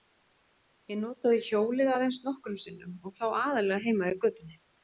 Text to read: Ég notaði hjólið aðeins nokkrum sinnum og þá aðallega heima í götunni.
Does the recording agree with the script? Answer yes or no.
yes